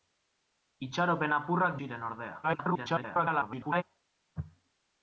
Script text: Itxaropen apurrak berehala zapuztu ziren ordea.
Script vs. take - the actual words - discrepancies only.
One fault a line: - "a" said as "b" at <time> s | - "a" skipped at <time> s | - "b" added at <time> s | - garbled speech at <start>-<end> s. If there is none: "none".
- "berehala zapuztu" skipped at 1.8 s
- garbled speech at 2.4-3.8 s